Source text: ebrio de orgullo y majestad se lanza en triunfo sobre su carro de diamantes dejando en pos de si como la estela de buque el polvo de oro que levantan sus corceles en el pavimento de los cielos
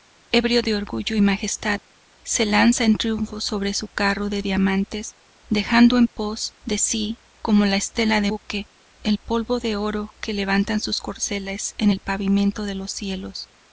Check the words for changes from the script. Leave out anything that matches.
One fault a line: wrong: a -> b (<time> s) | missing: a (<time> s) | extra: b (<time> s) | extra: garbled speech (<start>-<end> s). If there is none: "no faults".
no faults